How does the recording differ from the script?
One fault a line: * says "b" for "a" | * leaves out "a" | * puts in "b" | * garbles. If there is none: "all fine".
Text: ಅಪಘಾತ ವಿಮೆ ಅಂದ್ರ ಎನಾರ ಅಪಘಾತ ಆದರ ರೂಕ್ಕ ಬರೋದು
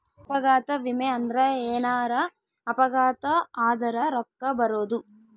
all fine